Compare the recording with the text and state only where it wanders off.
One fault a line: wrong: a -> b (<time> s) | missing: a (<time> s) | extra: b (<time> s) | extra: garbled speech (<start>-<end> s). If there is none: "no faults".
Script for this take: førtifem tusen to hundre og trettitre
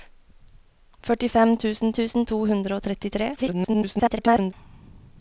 extra: tusen (2.0 s)
extra: garbled speech (3.4-4.5 s)